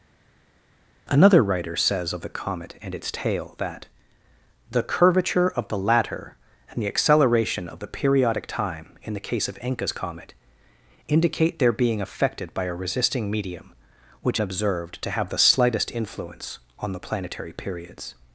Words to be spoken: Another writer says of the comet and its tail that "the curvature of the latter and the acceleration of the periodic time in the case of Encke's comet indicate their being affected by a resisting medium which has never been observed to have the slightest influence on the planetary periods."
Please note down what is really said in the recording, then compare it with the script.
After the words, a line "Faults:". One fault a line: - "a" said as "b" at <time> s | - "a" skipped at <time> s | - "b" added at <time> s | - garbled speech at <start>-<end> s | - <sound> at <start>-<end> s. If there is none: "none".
Another writer says of the comet and its tail that "the curvature of the latter and the acceleration of the periodic time in the case of Encke's comet indicate their being affected by a resisting medium which observed to have the slightest influence on the planetary periods."
Faults:
- "has never been" skipped at 14.4 s